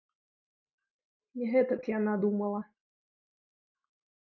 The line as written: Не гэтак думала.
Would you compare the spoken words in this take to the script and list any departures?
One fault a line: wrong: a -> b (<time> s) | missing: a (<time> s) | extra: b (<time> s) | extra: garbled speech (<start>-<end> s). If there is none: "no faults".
extra: яна (2.0 s)